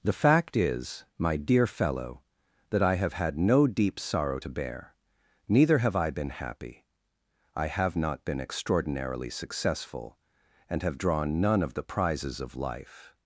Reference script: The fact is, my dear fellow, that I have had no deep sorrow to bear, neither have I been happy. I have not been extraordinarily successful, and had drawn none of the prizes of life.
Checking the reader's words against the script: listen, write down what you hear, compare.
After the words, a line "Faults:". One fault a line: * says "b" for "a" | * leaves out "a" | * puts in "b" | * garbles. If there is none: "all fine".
The fact is, my dear fellow, that I have had no deep sorrow to bear, neither have I been happy. I have not been extraordinarily successful, and have drawn none of the prizes of life.
Faults:
* says "have" for "had"